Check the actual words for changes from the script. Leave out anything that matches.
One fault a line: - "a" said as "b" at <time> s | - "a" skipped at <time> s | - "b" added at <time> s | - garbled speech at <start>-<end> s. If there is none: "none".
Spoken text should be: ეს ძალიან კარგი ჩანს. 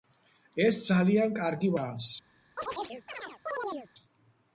none